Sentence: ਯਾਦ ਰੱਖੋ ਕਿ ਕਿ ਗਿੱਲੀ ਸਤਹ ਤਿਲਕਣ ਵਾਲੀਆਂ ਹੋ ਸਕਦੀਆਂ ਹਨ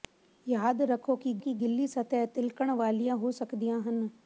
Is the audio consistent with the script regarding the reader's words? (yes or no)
yes